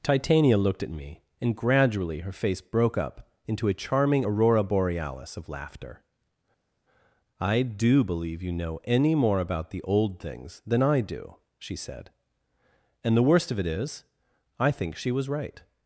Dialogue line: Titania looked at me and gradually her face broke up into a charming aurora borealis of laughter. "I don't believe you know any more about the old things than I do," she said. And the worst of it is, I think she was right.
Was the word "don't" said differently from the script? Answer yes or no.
yes